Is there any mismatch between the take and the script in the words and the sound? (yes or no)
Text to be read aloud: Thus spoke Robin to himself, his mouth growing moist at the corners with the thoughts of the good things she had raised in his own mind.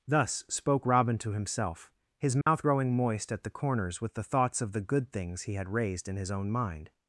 yes